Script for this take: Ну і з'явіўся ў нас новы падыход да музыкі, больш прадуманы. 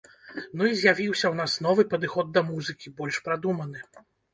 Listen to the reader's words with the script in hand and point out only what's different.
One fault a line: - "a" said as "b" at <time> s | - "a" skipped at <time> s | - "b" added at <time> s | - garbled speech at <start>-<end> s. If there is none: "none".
none